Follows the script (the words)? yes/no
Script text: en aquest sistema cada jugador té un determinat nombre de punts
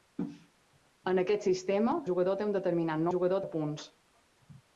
no